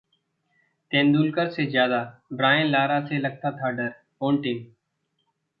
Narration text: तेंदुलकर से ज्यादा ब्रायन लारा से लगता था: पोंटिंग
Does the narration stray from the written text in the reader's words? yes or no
yes